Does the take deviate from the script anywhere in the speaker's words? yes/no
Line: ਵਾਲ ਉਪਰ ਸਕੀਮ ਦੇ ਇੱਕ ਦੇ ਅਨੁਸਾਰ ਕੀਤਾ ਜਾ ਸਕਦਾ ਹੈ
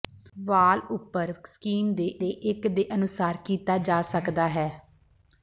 yes